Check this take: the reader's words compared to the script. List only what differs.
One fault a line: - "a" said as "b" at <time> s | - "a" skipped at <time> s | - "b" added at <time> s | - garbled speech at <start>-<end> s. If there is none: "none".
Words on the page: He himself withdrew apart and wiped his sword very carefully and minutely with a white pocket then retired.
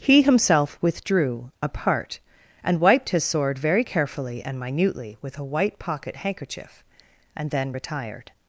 - "handkerchief and" added at 6.2 s